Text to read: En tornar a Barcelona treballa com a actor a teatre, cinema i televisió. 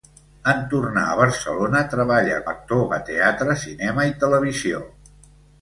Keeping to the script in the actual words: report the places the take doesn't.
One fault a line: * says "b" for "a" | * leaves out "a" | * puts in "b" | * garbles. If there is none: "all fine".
* leaves out "com"